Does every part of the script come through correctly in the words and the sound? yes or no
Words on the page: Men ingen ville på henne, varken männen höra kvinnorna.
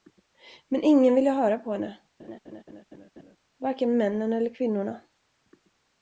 no